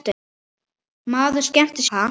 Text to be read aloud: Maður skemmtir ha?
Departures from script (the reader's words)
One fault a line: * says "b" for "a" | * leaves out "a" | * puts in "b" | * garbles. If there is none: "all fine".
all fine